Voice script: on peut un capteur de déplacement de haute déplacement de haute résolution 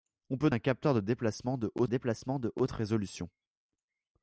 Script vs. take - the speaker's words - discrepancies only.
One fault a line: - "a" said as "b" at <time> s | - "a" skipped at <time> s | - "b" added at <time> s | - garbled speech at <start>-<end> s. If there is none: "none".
none